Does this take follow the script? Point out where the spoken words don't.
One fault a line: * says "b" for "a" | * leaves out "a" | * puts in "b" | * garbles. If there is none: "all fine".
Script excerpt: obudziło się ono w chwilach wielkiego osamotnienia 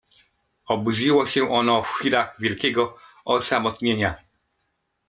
all fine